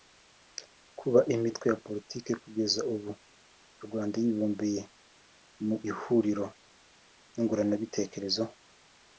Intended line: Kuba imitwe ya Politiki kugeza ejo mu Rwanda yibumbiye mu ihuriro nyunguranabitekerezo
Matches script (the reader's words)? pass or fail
fail